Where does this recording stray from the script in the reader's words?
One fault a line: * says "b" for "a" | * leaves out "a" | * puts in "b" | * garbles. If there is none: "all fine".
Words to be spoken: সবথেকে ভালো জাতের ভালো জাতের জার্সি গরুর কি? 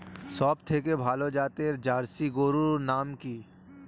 * leaves out "ভালো জাতের"
* puts in "নাম"